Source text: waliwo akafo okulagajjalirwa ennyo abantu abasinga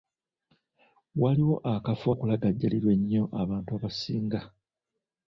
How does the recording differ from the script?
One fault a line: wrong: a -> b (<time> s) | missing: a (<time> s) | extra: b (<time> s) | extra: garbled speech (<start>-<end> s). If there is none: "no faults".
no faults